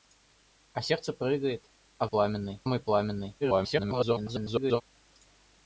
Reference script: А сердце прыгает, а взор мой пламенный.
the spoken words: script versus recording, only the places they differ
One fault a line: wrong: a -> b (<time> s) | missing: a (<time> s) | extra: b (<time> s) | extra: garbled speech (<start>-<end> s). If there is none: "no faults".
wrong: взор -> пламенный (2.0 s)
extra: garbled speech (3.4-4.8 s)